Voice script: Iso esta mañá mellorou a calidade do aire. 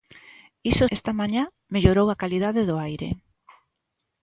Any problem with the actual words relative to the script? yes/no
no